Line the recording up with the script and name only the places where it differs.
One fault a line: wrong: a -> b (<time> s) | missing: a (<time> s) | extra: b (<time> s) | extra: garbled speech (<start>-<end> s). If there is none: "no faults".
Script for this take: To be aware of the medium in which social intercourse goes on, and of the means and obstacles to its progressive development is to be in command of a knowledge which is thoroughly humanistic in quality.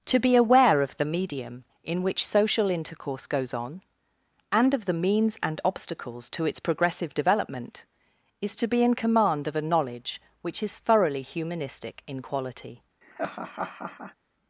no faults